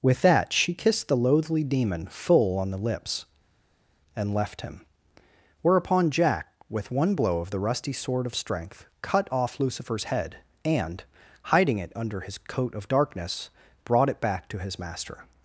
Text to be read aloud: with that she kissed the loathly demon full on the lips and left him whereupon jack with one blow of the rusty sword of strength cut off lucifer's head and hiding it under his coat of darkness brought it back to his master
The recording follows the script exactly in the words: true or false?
true